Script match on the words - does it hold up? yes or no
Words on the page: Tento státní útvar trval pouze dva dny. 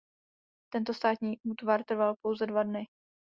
yes